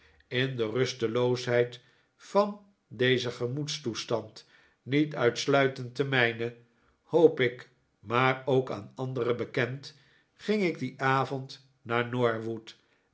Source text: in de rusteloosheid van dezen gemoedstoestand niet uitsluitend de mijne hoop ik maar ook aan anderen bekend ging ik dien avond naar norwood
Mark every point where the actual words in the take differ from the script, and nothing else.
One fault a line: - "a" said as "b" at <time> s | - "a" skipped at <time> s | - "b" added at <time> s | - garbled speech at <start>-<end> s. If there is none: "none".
none